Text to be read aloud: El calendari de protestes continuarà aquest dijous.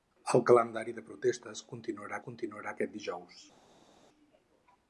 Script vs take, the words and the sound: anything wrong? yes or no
yes